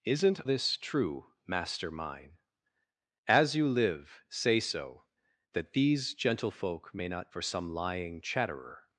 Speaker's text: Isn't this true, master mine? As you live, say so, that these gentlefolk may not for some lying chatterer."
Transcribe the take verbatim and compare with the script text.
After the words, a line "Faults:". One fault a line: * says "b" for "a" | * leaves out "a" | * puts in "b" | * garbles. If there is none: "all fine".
Isn't this true, master mine? As you live, say so, that these gentlefolk may not for some lying chatterer."
Faults:
all fine